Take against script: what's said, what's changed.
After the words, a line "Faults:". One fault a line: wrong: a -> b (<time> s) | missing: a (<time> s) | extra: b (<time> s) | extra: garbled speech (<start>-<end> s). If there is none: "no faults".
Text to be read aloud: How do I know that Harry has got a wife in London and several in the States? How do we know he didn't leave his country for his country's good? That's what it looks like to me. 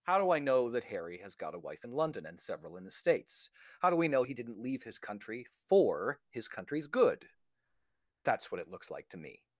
How do I know that Harry has got a wife in London and several in the States? How do we know he didn't leave his country for his country's good? That's what it looks like to me.
Faults:
no faults